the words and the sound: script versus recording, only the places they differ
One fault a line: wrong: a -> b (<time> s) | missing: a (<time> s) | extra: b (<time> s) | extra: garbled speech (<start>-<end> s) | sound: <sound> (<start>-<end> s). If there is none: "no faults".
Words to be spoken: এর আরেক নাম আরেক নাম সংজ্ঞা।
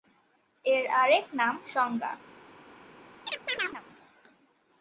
missing: আরেক নাম (1.6 s)
sound: chirp (3.3-3.8 s)